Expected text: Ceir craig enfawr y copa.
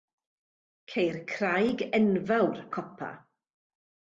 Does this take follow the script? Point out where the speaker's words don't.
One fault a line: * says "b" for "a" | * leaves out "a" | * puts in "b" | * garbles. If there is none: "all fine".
all fine